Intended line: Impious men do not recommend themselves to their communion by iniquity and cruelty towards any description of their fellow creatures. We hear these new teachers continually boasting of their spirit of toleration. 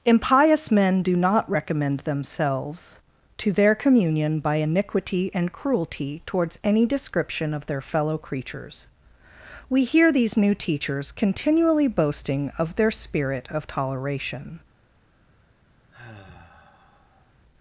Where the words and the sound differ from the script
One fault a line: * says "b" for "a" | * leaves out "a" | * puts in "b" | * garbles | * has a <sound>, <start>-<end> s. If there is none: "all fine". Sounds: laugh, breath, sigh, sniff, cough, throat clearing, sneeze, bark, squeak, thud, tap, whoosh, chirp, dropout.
* has a sigh, 15.9-17.3 s